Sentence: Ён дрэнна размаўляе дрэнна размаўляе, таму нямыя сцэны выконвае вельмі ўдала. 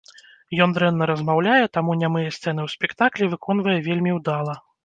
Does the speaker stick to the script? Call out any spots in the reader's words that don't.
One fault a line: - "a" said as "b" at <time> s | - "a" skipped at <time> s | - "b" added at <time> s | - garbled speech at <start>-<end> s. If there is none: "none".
- "дрэнна размаўляе" skipped at 1.6 s
- "ў спектаклі" added at 2.6 s